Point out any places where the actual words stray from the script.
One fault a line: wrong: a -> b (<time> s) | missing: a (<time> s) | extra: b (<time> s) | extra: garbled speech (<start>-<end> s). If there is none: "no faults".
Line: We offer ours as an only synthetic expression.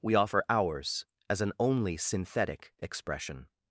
no faults